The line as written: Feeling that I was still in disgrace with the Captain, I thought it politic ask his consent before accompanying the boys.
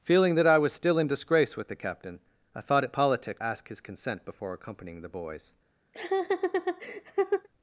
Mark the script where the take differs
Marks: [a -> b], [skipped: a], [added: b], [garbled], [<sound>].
Feeling that I was still in disgrace with the Captain, I thought it politic ask his consent before accompanying the boys. [laugh]